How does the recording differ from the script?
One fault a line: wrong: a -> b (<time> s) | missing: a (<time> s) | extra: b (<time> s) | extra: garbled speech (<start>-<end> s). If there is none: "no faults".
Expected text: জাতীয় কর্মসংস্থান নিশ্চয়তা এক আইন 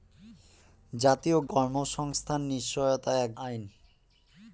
no faults